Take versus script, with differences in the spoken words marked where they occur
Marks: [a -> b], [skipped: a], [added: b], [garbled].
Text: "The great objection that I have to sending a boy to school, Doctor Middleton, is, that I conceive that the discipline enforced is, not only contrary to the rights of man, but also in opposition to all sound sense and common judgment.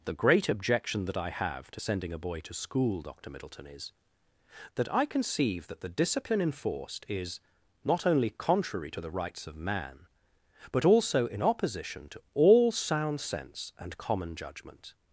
"The great objection that I have to sending a boy to school, Doctor Middleton, is, that I conceive that the discipline enforced is, not only contrary to the rights of man, but also in opposition to all sound sense and common judgment.